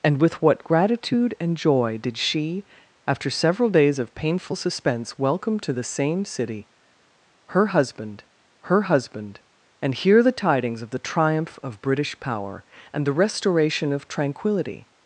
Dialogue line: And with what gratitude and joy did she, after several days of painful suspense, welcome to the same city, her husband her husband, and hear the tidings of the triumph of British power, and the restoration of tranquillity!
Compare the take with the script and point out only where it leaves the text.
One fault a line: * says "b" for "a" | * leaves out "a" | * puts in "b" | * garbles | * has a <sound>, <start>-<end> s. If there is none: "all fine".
all fine